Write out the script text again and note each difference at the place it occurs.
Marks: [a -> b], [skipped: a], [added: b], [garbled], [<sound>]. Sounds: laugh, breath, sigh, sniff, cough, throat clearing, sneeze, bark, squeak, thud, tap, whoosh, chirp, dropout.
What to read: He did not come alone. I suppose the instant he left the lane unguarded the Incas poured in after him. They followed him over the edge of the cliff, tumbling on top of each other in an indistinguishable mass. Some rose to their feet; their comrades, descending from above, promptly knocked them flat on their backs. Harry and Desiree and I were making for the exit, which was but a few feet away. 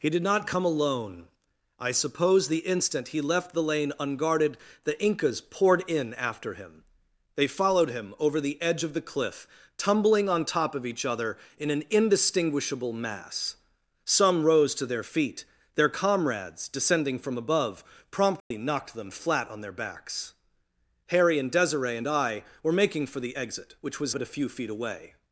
He did not come alone. I suppose the instant he left the lane unguarded the Incas poured in after him. They followed him over the edge of the cliff, tumbling on top of each other in an indistinguishable mass. Some rose to their feet; their comrades, descending from above, promptly [dropout] knocked them flat on their backs. Harry and Desiree and I were making for the exit, which was but a few feet away.